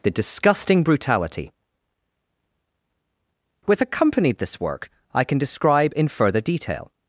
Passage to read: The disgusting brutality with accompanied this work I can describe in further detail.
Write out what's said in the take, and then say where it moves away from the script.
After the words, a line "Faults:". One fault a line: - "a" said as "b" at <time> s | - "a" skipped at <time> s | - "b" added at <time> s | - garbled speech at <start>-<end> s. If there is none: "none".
The disgusting brutality with accompanied this work I can describe in further detail.
Faults:
none